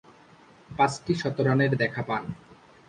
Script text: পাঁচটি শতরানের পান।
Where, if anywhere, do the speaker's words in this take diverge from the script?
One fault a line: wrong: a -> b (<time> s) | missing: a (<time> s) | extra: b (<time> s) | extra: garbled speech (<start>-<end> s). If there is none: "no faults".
extra: দেখা (1.8 s)